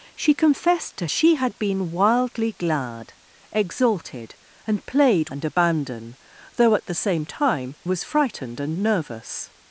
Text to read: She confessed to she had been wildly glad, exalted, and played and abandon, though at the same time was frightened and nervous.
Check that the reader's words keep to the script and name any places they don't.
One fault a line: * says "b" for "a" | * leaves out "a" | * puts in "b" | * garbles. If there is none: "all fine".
all fine